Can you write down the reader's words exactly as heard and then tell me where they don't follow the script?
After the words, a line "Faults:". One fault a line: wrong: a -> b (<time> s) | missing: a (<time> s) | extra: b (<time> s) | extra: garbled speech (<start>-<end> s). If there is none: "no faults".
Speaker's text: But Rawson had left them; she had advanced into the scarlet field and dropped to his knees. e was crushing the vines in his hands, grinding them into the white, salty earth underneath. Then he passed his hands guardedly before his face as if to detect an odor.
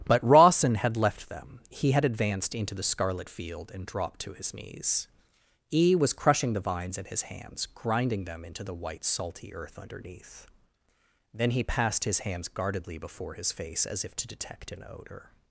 But Rawson had left them; he had advanced into the scarlet field and dropped to his knees. e was crushing the vines in his hands, grinding them into the white, salty earth underneath. Then he passed his hands guardedly before his face as if to detect an odor.
Faults:
wrong: she -> he (1.7 s)